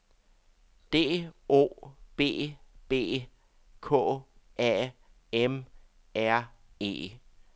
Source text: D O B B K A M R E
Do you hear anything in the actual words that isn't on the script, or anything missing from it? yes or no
no